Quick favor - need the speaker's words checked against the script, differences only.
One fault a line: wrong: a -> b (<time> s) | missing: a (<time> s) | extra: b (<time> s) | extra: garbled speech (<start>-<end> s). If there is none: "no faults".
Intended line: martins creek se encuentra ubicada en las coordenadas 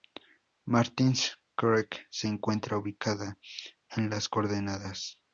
no faults